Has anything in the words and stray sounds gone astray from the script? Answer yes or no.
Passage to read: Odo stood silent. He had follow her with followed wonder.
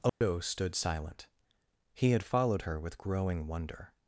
yes